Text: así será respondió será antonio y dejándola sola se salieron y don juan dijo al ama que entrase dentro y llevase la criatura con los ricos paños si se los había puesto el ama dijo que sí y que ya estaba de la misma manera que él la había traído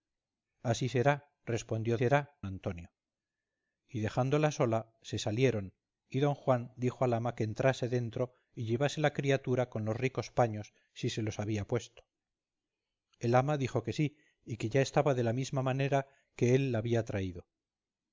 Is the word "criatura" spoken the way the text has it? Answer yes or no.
yes